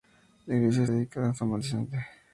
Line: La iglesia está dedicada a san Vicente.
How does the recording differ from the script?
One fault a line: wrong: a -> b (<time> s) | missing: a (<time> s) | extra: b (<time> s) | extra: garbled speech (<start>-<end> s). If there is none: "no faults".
missing: está (0.8 s)